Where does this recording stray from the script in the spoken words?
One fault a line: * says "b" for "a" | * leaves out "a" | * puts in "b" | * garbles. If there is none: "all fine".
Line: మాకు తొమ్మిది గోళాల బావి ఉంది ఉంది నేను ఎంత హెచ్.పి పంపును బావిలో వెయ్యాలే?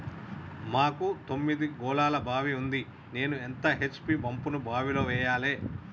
* leaves out "ఉంది"